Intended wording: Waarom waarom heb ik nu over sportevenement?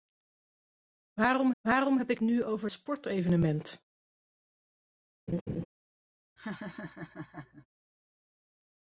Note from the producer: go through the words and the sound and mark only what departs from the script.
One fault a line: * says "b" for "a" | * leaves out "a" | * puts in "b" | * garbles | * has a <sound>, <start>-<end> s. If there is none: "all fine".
* has a laugh, 5.3-5.7 s
* has a laugh, 6.4-7.7 s